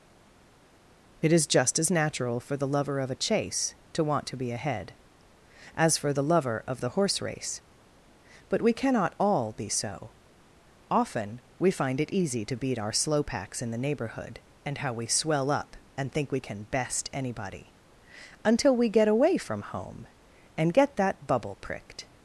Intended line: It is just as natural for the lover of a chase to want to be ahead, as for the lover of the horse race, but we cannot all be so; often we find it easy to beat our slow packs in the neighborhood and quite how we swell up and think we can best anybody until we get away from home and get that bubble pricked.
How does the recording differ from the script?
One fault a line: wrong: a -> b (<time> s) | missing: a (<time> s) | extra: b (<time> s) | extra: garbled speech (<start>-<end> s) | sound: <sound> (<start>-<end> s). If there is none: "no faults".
missing: quite (14.8 s)